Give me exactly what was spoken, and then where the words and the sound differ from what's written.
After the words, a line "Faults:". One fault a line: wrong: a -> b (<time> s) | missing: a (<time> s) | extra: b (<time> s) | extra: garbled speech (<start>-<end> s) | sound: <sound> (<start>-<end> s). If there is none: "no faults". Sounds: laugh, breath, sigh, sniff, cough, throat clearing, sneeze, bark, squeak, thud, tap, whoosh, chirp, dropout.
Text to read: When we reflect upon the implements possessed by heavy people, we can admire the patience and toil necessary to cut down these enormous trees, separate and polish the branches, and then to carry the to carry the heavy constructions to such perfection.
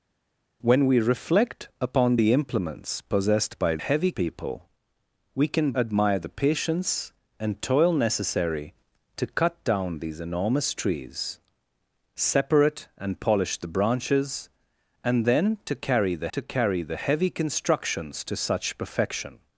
When we reflect upon the implements possessed by heavy people, we can admire the patience and toil necessary to cut down these enormous trees, separate and polish the branches, and then to carry the to carry the heavy constructions to such perfection.
Faults:
no faults